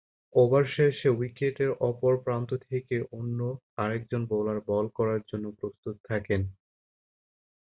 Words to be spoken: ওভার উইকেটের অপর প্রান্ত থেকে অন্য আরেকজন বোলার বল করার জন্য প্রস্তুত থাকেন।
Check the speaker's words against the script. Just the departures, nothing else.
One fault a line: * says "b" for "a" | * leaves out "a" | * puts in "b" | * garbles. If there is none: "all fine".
* puts in "শেষে"